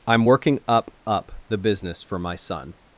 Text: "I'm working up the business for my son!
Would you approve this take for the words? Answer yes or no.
no